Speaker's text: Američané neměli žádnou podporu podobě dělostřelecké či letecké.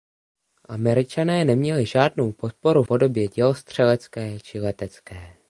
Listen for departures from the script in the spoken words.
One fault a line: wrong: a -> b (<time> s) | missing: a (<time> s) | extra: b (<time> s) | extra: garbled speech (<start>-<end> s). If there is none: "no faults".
no faults